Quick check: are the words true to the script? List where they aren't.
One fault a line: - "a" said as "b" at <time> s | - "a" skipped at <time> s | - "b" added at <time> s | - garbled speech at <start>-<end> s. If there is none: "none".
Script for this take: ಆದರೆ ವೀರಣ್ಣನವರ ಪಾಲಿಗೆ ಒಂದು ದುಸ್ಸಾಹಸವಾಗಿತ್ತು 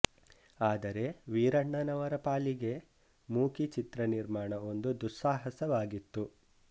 - "ಮೂಕಿ ಚಿತ್ರ ನಿರ್ಮಾಣ" added at 3.3 s